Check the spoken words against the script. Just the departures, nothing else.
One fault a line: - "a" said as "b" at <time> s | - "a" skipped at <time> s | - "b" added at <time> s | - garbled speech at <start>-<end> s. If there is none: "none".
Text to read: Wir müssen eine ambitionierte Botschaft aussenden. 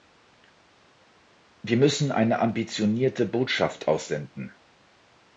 none